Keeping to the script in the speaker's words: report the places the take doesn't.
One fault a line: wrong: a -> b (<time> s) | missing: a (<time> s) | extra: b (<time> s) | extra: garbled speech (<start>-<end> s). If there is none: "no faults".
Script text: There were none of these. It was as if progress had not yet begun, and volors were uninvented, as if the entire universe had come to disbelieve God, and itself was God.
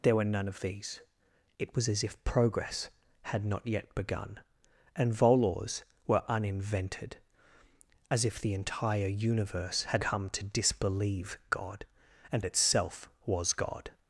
no faults